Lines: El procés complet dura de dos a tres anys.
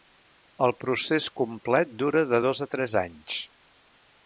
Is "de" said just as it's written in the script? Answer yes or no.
yes